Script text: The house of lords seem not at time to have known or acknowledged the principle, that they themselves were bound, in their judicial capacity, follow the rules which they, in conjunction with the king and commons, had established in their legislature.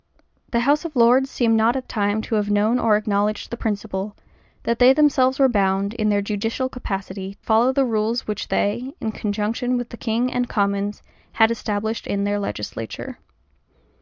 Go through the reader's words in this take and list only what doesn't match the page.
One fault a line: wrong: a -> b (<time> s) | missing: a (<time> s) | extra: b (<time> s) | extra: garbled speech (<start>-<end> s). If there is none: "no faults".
no faults